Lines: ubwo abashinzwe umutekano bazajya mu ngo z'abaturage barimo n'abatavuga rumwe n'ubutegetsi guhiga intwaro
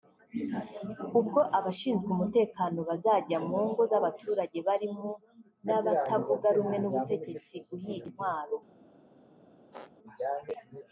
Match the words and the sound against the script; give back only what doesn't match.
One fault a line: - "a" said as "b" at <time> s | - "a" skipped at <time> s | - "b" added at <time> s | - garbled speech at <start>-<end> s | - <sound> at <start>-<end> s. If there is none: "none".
- squeak at 9.7-9.9 s